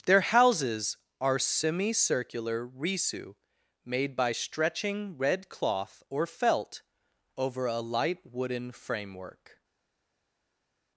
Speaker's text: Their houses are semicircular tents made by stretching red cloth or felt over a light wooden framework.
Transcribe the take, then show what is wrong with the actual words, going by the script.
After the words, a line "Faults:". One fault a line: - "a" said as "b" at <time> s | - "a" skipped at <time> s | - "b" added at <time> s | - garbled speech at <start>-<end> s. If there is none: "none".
Their houses are semicircular risu made by stretching red cloth or felt over a light wooden framework.
Faults:
- "tents" said as "risu" at 2.7 s